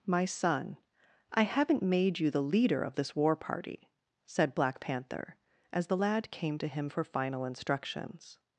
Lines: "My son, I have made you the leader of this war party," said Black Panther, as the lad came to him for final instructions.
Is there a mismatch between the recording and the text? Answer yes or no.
yes